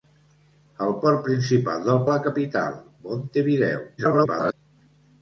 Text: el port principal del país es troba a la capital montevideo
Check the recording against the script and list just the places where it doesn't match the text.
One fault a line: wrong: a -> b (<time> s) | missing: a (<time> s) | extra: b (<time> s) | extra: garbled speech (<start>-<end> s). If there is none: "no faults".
missing: país es troba (2.0 s)
extra: garbled speech (4.0-4.5 s)